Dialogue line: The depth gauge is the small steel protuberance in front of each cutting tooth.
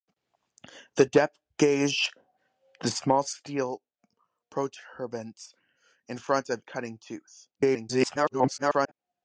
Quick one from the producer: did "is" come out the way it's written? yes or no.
no